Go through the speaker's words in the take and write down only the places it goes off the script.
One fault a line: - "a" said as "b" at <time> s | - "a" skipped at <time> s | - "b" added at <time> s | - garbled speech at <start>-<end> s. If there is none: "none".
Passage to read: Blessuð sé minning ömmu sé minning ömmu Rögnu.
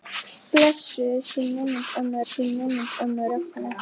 none